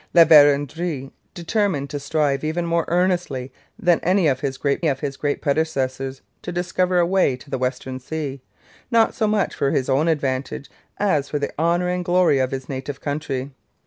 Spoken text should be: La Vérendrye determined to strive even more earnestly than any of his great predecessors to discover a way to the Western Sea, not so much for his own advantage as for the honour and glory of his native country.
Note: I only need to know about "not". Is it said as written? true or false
true